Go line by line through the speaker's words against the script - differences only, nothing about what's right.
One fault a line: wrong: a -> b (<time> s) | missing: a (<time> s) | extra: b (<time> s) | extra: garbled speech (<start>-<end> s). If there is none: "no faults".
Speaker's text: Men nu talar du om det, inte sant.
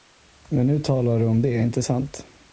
no faults